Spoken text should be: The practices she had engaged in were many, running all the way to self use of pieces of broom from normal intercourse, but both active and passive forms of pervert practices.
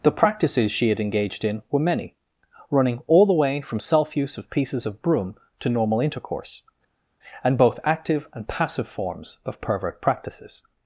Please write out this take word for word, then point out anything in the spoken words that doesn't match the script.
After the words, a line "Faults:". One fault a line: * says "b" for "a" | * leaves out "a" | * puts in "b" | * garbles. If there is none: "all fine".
The practices she had engaged in were many, running all the way from self use of pieces of broom to normal intercourse, and both active and passive forms of pervert practices.
Faults:
* says "from" for "to"
* says "to" for "from"
* says "and" for "but"